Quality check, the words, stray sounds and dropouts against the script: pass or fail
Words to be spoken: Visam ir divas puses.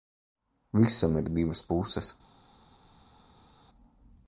pass